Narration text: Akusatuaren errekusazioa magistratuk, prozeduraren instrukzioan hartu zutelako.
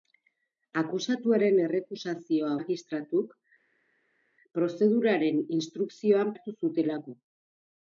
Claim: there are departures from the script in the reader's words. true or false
false